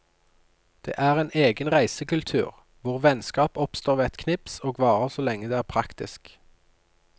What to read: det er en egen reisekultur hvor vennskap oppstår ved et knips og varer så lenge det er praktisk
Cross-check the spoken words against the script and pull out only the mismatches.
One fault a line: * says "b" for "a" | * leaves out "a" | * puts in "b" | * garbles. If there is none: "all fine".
all fine